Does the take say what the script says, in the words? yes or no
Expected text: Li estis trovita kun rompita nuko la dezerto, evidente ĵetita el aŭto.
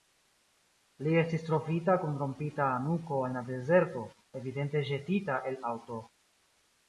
no